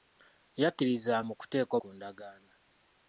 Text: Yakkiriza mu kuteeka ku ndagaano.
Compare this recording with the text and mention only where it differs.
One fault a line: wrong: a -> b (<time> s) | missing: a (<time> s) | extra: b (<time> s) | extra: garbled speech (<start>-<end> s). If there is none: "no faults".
no faults